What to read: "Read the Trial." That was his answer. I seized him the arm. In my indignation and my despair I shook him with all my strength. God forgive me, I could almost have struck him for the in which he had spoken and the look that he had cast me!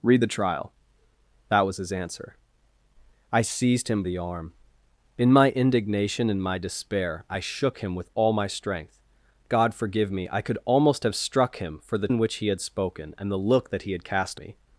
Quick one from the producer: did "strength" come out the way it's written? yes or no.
yes